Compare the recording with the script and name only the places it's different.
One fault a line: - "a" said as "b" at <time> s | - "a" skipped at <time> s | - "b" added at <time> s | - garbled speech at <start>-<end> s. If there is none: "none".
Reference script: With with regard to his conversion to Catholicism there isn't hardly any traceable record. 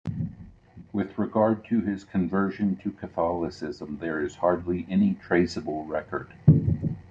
- "with" skipped at 1.1 s
- "isn't" said as "is" at 4.2 s